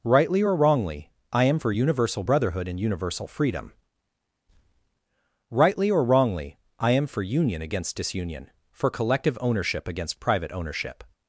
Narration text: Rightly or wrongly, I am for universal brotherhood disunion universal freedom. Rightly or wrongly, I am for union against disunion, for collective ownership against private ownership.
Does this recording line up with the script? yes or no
no